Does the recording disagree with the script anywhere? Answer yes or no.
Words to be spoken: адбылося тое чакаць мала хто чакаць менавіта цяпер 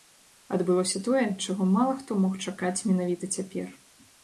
yes